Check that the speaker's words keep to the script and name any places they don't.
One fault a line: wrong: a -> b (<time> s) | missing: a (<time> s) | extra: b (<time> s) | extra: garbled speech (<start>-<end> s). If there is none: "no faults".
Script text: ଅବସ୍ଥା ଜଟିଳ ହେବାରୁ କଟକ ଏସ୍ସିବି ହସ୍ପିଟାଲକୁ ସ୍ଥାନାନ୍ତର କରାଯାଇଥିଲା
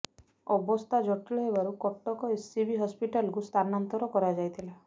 no faults